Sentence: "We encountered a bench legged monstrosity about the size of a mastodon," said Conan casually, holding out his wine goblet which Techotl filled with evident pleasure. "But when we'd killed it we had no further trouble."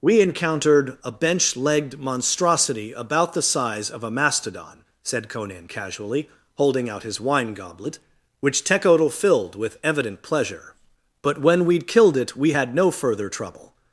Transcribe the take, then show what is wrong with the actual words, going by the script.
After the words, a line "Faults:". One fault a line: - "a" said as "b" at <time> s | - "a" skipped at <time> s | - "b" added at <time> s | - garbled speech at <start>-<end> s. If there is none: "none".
"We encountered a bench legged monstrosity about the size of a mastodon," said Conan casually, holding out his wine goblet which Techotl filled with evident pleasure. "But when we'd killed it we had no further trouble."
Faults:
none